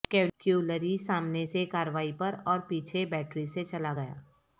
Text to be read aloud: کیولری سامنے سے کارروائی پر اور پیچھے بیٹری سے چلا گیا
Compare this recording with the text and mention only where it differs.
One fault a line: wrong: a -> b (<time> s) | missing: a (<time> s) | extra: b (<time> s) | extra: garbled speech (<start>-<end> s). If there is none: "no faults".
no faults